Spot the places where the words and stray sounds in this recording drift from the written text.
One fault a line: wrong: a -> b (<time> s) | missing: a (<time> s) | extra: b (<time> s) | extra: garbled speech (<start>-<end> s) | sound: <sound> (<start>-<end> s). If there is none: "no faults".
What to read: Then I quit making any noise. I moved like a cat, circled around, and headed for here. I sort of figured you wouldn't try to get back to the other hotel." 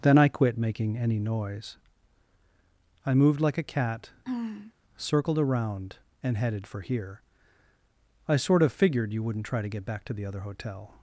sound: throat clearing (4.2-4.7 s)